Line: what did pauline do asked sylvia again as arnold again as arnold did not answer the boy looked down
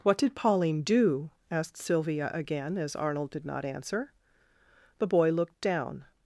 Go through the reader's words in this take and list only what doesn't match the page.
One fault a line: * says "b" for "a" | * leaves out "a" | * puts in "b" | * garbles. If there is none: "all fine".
* leaves out "again as arnold"